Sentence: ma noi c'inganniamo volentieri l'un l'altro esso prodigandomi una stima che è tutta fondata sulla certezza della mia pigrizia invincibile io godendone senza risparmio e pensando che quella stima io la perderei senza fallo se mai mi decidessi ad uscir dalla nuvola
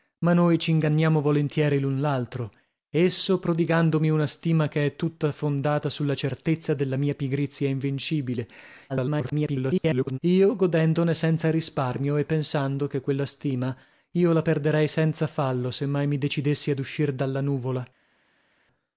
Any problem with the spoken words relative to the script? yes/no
yes